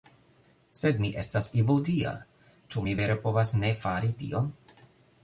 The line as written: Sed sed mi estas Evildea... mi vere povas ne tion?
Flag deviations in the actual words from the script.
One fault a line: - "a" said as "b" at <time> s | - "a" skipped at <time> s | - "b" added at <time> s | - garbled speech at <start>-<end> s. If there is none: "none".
- "sed" skipped at 1.0 s
- "ĉu" added at 2.7 s
- "fari" added at 3.8 s